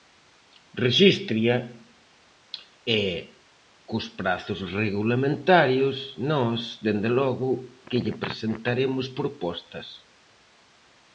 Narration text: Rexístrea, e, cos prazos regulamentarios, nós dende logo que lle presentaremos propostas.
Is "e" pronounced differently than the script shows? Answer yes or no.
no